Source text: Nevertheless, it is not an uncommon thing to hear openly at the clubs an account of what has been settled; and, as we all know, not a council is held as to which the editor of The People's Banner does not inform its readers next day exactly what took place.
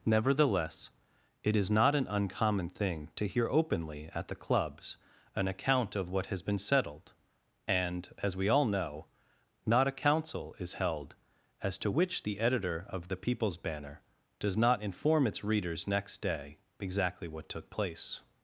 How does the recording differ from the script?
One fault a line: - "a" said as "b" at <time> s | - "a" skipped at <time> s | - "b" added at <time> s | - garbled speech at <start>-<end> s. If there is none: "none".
none